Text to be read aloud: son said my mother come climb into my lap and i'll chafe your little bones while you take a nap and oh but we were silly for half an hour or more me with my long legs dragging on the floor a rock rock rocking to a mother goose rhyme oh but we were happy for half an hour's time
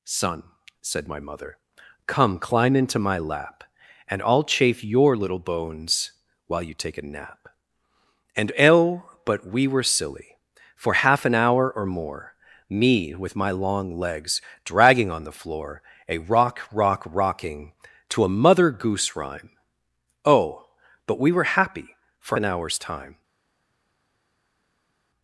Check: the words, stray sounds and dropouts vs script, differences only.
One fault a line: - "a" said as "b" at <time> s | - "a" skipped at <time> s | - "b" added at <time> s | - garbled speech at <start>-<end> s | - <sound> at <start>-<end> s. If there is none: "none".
- "half" skipped at 22.4 s